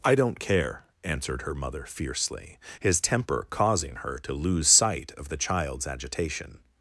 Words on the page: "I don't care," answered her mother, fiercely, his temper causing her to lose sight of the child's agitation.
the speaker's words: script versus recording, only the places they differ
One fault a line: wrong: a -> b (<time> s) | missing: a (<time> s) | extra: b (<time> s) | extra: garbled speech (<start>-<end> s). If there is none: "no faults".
no faults